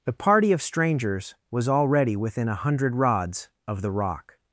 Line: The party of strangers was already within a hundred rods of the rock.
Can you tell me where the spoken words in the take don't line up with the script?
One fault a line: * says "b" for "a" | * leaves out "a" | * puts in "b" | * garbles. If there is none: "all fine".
all fine